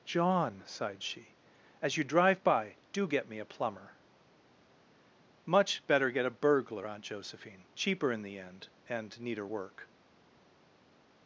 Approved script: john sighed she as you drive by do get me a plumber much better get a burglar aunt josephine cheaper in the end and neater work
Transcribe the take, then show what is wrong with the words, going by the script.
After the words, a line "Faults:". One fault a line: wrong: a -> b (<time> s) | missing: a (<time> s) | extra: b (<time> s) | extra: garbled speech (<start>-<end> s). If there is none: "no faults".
john sighed she as you drive by do get me a plumber much better get a burglar aunt josephine cheaper in the end and neater work
Faults:
no faults